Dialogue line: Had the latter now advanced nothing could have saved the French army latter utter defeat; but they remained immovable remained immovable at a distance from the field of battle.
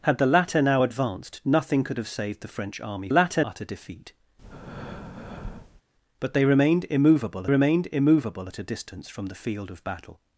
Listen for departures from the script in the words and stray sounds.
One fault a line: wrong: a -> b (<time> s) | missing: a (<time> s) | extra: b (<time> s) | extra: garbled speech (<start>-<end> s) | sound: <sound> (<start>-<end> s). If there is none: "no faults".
sound: breath (4.4-5.8 s)